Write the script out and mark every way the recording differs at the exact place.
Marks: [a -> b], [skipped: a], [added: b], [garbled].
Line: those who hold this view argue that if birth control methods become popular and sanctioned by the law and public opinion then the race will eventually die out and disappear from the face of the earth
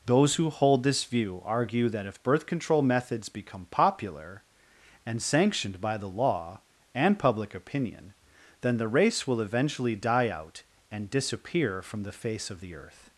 those who hold this view argue that if birth control methods become popular and sanctioned by the law and public opinion then the race will eventually die out and disappear from the face of the earth